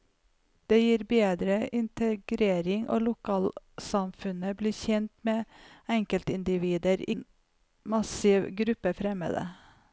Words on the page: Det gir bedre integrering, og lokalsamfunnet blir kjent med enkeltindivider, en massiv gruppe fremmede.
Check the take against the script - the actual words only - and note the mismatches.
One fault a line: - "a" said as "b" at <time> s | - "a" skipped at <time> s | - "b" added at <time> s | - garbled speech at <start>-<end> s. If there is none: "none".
none